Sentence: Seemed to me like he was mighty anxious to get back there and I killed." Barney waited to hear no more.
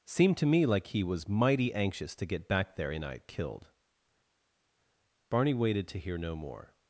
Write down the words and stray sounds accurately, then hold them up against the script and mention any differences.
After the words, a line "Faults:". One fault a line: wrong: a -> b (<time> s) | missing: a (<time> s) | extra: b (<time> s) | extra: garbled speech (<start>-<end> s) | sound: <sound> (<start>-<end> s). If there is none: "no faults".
Seemed to me like he was mighty anxious to get back there and I killed." Barney waited to hear no more.
Faults:
no faults